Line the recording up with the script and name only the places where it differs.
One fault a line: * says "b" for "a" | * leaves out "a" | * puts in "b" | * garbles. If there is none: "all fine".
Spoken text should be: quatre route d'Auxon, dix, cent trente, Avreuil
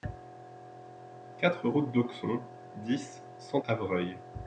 * leaves out "trente"